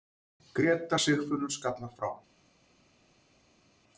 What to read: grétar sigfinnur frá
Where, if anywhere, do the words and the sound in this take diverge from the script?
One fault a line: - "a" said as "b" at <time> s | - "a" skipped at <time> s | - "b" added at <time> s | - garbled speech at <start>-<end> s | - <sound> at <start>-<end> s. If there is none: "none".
- "skallar" added at 1.5 s